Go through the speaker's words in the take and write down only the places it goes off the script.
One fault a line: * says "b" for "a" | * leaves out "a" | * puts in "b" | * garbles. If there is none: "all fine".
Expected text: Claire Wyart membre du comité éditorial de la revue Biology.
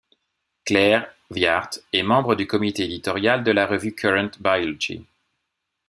* puts in "est"
* puts in "Current"